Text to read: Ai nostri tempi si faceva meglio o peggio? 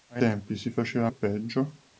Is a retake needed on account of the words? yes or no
yes